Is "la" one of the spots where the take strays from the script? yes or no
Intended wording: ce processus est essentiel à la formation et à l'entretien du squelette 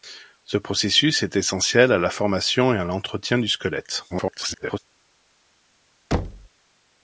no